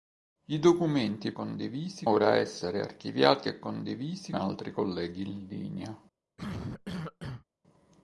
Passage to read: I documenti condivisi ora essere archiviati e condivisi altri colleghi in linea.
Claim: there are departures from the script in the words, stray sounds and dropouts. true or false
true